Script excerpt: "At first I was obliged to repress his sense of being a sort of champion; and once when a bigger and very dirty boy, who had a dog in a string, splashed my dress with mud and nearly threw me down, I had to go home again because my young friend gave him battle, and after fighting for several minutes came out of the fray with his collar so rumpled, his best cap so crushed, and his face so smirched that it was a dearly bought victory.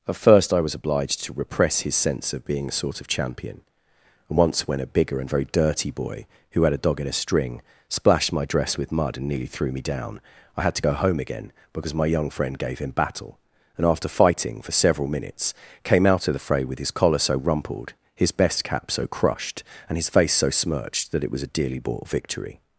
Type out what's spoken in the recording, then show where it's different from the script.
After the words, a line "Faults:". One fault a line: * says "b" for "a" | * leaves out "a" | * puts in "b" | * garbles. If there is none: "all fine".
"At first I was obliged to repress his sense of being a sort of champion; and once when a bigger and very dirty boy, who had a dog in a string, splashed my dress with mud and nearly threw me down, I had to go home again because my young friend gave him battle, and after fighting for several minutes came out of the fray with his collar so rumpled, his best cap so crushed, and his face so smirched that it was a dearly bought victory.
Faults:
all fine